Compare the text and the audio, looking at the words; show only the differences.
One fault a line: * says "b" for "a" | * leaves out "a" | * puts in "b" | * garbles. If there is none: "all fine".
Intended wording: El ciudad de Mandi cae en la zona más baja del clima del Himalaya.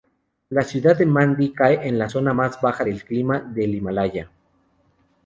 * says "La" for "El"